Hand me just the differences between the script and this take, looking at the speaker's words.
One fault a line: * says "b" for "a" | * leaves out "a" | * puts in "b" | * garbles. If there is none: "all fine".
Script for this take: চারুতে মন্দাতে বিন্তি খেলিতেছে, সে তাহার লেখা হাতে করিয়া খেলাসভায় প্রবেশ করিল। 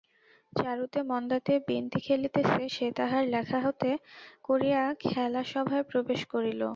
all fine